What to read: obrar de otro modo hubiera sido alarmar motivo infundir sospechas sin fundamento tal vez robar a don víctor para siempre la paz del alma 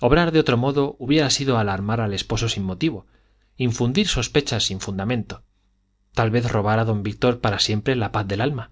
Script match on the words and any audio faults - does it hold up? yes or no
no